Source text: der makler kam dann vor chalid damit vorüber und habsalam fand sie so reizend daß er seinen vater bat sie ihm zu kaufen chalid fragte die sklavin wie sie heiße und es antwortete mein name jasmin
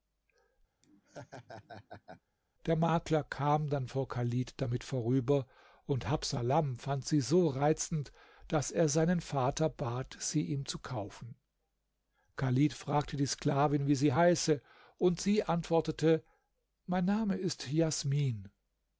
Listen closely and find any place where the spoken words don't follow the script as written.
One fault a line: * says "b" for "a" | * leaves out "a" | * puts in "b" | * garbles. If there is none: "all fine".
* says "sie" for "es"
* puts in "ist"